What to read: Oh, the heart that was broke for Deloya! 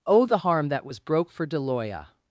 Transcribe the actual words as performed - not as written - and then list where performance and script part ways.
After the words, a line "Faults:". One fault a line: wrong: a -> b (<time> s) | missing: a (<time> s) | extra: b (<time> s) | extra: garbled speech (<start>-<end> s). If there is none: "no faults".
Oh, the harm that was broke for Deloya!
Faults:
wrong: heart -> harm (0.3 s)